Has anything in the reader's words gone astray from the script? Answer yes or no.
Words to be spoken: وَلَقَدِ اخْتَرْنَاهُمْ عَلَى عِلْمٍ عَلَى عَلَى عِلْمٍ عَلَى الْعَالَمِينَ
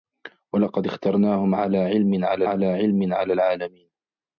no